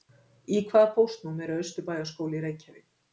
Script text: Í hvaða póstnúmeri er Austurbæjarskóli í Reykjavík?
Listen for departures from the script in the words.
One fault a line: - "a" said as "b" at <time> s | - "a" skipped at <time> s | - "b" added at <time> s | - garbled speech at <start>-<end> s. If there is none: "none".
none